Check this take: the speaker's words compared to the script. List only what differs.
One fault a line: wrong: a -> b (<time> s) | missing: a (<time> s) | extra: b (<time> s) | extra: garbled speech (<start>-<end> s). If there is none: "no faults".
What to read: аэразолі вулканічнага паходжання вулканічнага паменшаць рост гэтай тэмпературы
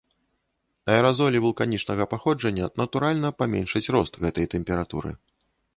wrong: вулканічнага -> натуральна (2.8 s)